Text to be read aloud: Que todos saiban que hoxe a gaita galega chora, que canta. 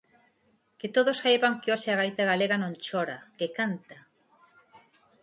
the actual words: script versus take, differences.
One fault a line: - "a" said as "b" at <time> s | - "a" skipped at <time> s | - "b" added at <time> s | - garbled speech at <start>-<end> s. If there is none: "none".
- "non" added at 2.6 s